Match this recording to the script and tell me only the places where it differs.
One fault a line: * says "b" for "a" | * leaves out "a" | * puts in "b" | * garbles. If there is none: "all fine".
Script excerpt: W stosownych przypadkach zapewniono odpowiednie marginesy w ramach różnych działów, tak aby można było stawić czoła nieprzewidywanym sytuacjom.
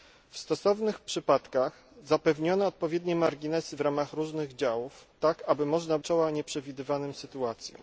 * leaves out "było stawić"